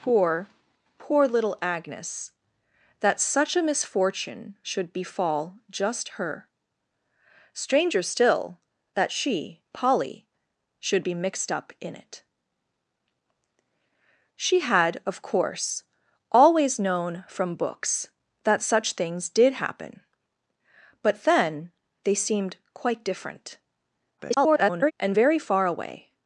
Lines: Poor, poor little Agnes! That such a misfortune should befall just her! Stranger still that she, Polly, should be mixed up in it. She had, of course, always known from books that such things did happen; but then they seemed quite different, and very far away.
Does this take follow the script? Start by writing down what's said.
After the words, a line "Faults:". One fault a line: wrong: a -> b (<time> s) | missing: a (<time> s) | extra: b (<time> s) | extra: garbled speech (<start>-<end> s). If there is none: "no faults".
Poor, poor little Agnes! That such a misfortune should befall just her! Stranger still that she, Polly, should be mixed up in it. She had, of course, always known from books that such things did happen; but then they seemed quite different, [garbled] and very far away.
Faults:
extra: garbled speech (24.2-24.9 s)